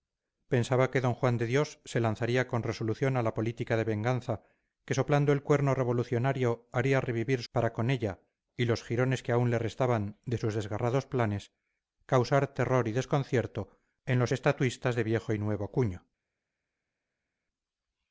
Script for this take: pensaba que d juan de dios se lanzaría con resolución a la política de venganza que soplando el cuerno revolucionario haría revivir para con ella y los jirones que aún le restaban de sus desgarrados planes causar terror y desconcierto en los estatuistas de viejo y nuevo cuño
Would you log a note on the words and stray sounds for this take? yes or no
no